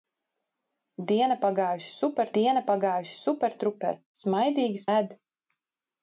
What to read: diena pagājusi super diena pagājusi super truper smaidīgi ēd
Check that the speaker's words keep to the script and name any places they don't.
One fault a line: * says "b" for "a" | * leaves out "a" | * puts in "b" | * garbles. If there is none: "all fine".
all fine